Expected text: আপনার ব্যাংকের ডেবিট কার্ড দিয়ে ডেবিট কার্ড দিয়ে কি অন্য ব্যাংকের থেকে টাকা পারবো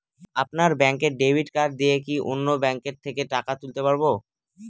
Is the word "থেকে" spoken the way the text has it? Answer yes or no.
yes